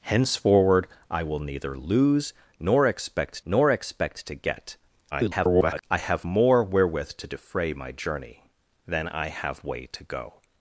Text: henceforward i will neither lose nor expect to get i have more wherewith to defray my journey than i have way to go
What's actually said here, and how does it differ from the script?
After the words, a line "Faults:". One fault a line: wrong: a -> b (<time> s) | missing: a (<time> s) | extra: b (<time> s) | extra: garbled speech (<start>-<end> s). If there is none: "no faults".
henceforward i will neither lose nor expect nor expect to get [garbled] i have more wherewith to defray my journey than i have way to go
Faults:
extra: nor expect (3.4 s)
extra: garbled speech (5.1-5.8 s)